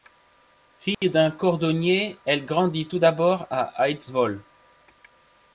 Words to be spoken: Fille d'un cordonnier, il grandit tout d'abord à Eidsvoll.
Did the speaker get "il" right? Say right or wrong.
wrong